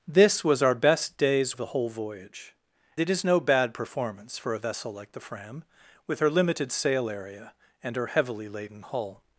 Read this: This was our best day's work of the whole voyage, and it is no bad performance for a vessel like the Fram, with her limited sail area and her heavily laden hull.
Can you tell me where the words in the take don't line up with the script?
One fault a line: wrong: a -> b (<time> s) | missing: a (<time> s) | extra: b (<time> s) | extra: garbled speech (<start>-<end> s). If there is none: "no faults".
missing: work of (1.6 s)
missing: and (2.5 s)